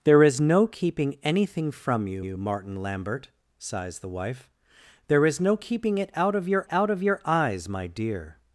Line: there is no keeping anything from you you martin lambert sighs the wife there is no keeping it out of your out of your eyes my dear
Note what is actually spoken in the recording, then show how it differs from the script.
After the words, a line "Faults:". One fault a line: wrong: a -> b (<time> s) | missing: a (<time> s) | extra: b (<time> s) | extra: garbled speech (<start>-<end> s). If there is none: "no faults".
there is no keeping anything from you you martin lambert sighs the wife there is no keeping it out of your out of your eyes my dear
Faults:
no faults